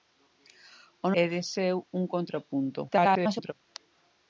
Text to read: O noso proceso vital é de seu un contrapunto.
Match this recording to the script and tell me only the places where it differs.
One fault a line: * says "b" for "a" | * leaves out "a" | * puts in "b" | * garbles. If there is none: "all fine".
* leaves out "noso proceso vital"
* garbles